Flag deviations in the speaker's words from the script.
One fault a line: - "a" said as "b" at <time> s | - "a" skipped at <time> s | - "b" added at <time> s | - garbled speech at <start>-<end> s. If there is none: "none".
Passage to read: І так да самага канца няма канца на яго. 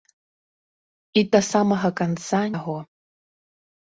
- "так" skipped at 1.2 s
- "няма канца на" skipped at 2.4 s